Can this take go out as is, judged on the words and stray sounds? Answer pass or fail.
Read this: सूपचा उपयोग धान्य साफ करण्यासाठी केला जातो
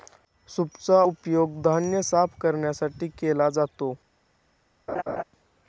fail